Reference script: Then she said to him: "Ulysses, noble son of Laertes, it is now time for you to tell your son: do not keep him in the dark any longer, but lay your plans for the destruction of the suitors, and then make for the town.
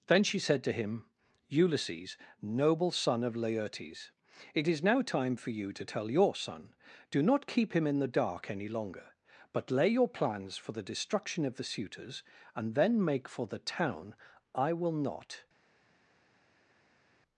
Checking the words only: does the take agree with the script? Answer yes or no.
no